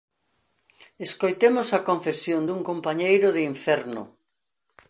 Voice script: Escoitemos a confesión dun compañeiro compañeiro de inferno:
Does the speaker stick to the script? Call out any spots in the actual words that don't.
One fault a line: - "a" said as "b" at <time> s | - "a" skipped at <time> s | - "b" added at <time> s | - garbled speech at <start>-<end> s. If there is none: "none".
- "compañeiro" skipped at 3.3 s